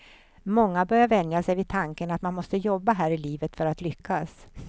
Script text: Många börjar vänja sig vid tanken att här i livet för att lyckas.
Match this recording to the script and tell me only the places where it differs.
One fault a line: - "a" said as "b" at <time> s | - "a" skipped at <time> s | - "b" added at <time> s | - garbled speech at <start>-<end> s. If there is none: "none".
- "man måste jobba" added at 2.2 s